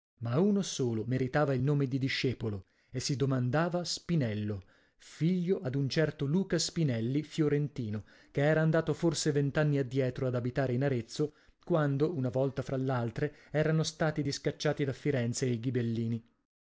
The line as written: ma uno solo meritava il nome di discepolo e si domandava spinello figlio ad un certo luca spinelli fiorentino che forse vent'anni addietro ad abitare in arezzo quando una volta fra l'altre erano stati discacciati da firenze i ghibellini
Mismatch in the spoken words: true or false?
true